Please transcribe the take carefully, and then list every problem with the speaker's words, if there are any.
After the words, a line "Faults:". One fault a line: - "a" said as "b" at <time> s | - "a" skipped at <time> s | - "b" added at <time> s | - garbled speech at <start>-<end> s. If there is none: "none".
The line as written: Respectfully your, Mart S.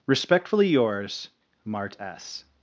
Respectfully yours, Mart S.
Faults:
- "your" said as "yours" at 0.7 s